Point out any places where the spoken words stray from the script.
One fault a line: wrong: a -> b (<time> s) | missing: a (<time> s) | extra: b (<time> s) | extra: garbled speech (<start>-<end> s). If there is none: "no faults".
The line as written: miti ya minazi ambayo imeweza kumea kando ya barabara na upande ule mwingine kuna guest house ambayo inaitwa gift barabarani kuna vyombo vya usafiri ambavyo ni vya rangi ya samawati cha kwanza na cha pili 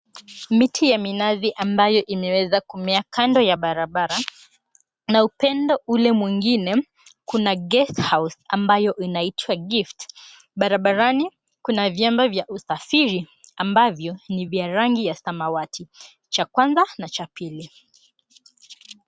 no faults